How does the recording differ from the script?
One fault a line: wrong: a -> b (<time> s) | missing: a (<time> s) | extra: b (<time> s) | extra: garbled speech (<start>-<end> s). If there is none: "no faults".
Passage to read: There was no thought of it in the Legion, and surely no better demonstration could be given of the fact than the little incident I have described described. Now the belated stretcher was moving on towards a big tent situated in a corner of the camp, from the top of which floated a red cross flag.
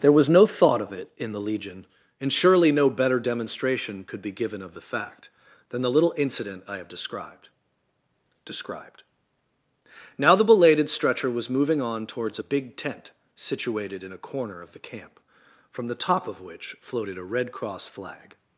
no faults